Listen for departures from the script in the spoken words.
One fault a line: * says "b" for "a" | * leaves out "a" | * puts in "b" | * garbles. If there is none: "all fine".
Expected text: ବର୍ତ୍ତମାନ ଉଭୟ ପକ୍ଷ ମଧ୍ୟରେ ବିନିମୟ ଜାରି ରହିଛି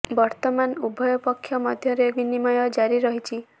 all fine